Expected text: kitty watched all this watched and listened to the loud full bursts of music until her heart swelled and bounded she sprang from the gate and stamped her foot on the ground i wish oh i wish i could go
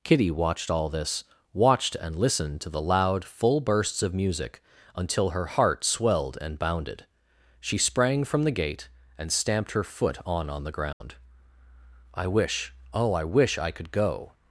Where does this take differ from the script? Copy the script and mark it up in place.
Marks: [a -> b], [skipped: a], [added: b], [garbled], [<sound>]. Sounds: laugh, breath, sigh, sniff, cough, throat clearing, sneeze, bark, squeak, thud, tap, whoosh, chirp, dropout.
kitty watched all this watched and listened to the loud full bursts of music until her heart swelled and bounded she sprang from the gate and stamped her foot on [added: on] the ground [dropout] i wish oh i wish i could go